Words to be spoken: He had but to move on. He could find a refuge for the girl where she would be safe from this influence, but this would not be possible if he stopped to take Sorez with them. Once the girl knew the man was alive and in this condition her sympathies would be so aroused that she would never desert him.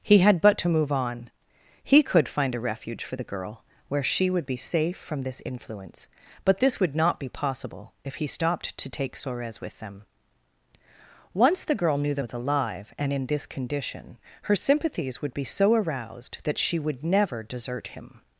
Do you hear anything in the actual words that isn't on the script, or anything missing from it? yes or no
yes